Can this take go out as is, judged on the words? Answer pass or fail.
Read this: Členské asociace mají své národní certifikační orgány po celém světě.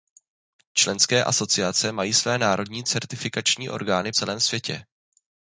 fail